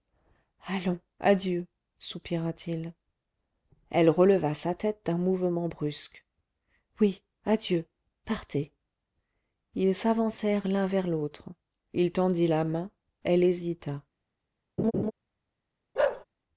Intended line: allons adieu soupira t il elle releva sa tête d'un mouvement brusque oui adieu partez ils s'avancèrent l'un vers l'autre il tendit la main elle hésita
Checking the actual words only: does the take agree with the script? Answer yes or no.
yes